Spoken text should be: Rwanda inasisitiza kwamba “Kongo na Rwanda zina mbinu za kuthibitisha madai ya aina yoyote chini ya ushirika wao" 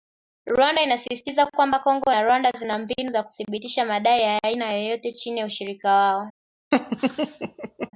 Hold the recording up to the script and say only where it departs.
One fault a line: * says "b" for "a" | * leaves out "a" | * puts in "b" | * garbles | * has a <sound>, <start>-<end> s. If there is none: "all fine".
* has a laugh, 6.7-7.9 s